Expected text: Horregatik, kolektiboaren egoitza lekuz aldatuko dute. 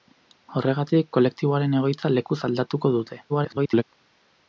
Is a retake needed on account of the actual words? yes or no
yes